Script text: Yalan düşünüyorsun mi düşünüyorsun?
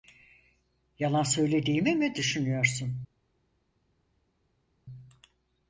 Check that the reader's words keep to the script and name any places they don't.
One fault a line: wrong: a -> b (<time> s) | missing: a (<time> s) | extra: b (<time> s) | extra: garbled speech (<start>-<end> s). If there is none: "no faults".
wrong: düşünüyorsun -> söylediğimi (1.2 s)